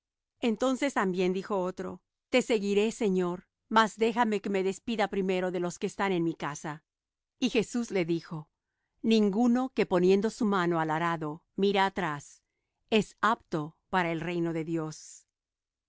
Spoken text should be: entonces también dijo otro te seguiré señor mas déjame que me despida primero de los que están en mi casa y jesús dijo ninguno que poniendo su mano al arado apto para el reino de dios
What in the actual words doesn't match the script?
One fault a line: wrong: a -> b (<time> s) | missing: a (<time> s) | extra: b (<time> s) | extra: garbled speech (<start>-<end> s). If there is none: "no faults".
extra: le (7.9 s)
extra: mira atrás es (11.5 s)